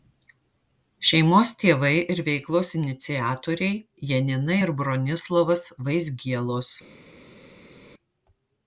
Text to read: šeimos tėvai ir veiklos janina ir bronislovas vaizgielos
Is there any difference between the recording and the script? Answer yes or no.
yes